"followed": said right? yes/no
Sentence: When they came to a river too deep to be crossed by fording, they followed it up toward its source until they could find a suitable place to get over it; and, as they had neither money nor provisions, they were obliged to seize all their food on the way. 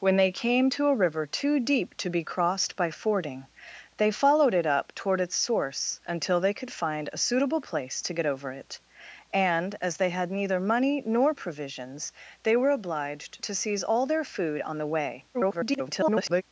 yes